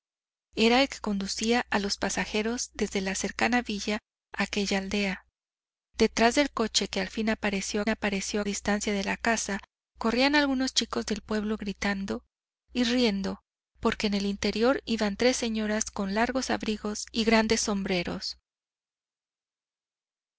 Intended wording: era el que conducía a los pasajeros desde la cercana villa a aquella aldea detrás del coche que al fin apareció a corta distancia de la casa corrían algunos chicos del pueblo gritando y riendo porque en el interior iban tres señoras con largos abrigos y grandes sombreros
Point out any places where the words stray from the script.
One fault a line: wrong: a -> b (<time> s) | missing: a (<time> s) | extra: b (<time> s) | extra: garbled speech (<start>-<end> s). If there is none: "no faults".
wrong: corta -> apareció (7.9 s)